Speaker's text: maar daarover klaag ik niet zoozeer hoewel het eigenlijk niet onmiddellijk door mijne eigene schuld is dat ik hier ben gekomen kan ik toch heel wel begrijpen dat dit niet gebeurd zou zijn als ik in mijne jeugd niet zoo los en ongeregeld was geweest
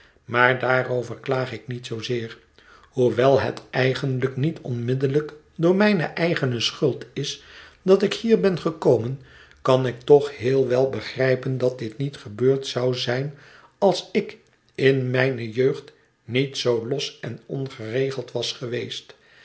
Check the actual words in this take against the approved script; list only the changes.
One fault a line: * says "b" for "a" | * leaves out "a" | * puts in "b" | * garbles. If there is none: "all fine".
all fine